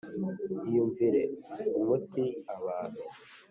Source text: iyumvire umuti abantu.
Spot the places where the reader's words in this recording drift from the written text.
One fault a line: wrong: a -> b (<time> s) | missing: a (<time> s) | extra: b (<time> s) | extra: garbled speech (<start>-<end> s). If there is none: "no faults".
no faults